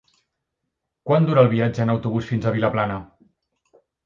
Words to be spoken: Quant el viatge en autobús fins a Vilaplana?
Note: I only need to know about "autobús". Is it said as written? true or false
true